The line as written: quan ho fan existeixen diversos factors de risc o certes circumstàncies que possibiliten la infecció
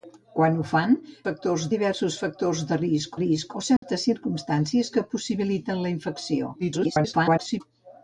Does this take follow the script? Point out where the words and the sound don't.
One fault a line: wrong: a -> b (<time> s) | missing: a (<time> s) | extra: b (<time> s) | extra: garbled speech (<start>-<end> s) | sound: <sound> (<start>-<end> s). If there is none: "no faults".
wrong: existeixen -> factors (1.3 s)
extra: risc (3.2 s)
sound: dropout (3.8-3.8 s)
extra: garbled speech (6.6-7.6 s)